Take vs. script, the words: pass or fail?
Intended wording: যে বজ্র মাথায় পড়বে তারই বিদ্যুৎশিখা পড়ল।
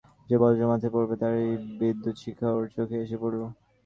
fail